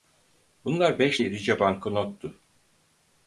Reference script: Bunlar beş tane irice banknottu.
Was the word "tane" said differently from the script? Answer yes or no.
yes